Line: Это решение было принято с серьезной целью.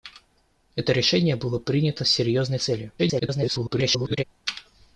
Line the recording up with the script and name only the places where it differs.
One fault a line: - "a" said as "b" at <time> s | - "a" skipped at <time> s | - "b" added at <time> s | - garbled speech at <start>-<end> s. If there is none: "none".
- garbled speech at 3.0-4.2 s